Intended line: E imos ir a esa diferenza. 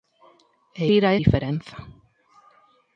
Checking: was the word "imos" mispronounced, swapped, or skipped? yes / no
yes